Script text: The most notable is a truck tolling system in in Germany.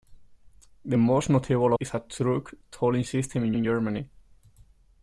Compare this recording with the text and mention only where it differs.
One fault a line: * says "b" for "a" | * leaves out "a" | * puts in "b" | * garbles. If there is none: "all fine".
all fine